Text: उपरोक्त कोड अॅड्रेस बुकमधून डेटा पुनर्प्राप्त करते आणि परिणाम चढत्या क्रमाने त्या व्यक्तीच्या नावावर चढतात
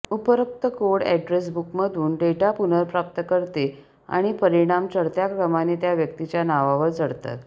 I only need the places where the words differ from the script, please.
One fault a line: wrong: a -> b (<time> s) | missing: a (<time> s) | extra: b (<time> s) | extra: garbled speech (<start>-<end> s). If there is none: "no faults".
no faults